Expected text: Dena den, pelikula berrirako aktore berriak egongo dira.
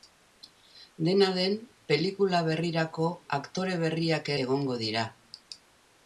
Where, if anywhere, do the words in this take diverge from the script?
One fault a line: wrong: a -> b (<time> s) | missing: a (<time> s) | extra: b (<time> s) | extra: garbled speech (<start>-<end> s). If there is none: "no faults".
no faults